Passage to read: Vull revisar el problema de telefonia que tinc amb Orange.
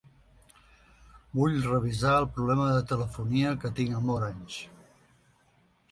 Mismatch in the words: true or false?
false